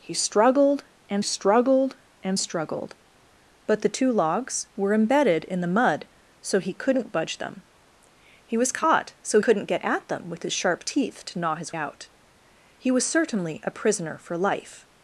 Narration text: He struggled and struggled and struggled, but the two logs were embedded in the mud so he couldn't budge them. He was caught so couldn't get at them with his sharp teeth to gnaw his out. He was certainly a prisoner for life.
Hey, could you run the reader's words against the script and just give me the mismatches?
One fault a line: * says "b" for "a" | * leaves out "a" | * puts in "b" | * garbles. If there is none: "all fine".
all fine